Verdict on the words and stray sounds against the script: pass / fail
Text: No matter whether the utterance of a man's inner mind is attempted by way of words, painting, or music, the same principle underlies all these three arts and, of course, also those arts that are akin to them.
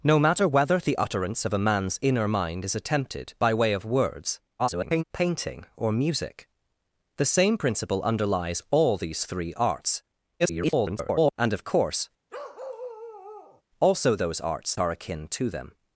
fail